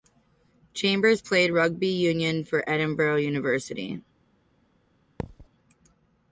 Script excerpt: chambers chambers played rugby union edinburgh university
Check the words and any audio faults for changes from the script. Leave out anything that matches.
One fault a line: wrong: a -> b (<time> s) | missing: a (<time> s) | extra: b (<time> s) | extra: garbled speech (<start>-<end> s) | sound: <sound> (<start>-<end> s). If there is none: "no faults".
missing: chambers (1.2 s)
extra: for (2.4 s)
sound: thud (5.2-5.5 s)